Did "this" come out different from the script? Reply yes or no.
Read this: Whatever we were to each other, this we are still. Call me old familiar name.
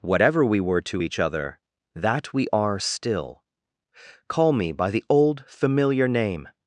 yes